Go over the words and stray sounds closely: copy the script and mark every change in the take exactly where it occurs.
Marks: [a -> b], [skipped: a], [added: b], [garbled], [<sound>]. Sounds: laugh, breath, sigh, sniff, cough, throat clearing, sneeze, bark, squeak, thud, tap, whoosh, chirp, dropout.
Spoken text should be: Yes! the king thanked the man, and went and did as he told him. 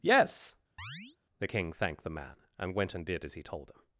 Yes! [chirp] the king thanked the man, and went and did as he told him.